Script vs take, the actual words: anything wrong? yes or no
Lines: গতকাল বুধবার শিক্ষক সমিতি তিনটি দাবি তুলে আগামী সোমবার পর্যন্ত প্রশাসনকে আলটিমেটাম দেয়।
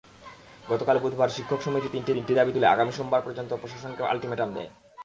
yes